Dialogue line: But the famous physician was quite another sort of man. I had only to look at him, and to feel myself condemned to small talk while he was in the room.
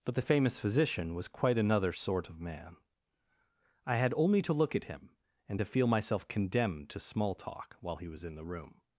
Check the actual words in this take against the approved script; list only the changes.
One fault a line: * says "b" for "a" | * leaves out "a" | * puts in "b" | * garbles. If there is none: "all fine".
all fine